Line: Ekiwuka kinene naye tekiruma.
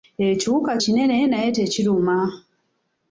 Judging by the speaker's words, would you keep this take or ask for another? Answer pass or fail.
pass